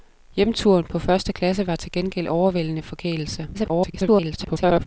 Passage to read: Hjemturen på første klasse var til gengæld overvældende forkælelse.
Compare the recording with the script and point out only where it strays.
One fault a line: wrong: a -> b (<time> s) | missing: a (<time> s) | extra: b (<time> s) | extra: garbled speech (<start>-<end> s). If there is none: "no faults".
extra: garbled speech (3.5-4.9 s)